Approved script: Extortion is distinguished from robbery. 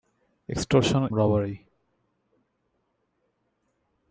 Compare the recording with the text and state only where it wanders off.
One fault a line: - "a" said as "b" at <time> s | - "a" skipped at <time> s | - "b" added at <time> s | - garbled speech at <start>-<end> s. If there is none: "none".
- "is distinguished from" skipped at 1.1 s